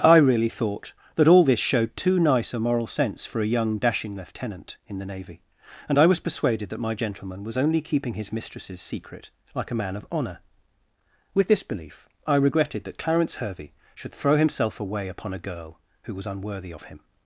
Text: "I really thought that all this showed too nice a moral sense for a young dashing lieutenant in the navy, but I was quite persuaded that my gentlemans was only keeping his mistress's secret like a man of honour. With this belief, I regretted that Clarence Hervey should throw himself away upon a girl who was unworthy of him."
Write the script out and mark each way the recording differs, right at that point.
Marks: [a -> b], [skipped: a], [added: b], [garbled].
"I really thought that all this showed too nice a moral sense for a young dashing lieutenant in the navy, [but -> and] I was [skipped: quite] persuaded that my [gentlemans -> gentleman] was only keeping his mistress's secret like a man of honour. With this belief, I regretted that Clarence Hervey should throw himself away upon a girl who was unworthy of him."